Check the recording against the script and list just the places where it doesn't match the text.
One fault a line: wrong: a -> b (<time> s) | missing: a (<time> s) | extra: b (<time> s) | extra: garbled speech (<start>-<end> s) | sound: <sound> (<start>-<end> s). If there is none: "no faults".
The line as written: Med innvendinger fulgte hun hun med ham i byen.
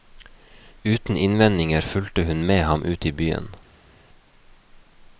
wrong: Med -> Uten (0.8 s)
missing: hun (2.5 s)
extra: ut (2.8 s)